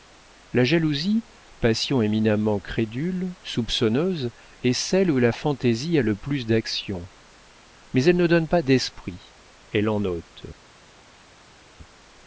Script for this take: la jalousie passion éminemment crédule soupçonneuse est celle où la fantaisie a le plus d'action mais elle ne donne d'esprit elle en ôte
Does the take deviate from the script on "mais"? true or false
false